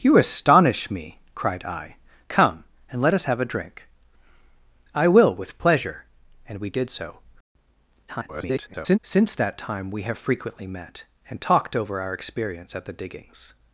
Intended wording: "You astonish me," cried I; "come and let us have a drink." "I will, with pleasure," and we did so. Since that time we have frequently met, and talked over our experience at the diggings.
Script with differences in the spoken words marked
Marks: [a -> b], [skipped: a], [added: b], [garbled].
"You astonish me," cried I; "come and let us have a drink." "I will, with pleasure," and we did so. [garbled] Since that time we have frequently met, and talked over our experience at the diggings.